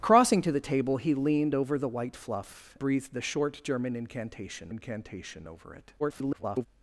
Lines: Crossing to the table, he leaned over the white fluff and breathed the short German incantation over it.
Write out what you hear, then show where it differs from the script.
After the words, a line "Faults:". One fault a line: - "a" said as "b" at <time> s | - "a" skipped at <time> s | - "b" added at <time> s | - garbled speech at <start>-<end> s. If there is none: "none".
Crossing to the table, he leaned over the white fluff breathed the short German incantation incantation over it. [garbled]
Faults:
- "and" skipped at 2.8 s
- "incantation" added at 4.7 s
- garbled speech at 6.0-6.7 s